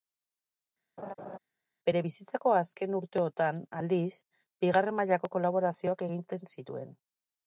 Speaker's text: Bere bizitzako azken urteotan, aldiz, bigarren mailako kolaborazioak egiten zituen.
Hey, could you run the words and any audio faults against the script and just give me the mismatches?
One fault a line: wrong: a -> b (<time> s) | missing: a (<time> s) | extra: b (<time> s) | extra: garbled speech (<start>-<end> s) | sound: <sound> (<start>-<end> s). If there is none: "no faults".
sound: laugh (1.0-1.4 s)